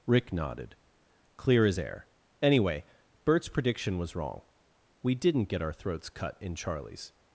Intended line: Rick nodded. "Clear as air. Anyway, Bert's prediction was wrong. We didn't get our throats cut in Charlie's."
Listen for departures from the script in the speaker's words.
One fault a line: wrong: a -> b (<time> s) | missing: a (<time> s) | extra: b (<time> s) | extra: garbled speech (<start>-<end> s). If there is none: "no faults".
no faults